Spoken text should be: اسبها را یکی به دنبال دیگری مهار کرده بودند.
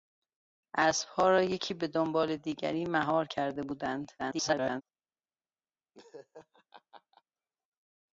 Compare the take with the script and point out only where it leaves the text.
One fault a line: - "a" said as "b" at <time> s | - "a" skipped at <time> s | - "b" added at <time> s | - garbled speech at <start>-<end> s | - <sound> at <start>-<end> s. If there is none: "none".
- garbled speech at 4.2-4.8 s
- laugh at 5.9-7.2 s